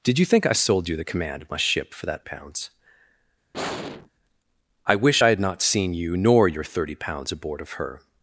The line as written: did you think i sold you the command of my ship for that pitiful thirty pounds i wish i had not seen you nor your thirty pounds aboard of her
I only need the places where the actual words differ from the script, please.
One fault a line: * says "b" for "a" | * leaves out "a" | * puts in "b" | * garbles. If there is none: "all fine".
* leaves out "pitiful thirty"